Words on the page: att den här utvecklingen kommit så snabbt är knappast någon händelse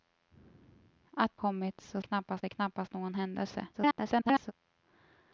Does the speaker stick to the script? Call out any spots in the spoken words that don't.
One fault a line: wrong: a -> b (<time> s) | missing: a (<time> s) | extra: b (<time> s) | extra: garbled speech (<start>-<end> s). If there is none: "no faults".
missing: den här utvecklingen (1.4 s)
wrong: snabbt -> knappast (2.0 s)
extra: garbled speech (3.7-4.5 s)